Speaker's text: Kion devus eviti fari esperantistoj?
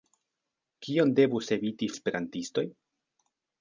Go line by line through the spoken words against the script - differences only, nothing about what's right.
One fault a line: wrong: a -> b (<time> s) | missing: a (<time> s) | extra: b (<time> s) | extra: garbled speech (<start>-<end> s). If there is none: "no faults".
missing: fari (1.9 s)